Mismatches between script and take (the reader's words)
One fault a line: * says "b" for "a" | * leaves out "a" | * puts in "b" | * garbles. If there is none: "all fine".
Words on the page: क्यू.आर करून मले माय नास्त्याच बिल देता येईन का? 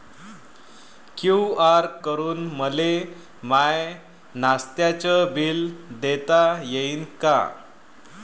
all fine